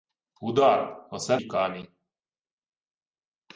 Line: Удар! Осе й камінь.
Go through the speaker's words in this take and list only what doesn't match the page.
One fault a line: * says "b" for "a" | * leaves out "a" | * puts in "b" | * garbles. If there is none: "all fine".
all fine